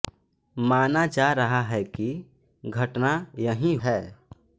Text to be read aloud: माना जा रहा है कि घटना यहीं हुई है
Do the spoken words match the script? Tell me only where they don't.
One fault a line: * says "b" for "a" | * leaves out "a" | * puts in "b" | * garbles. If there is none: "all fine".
* leaves out "हुई"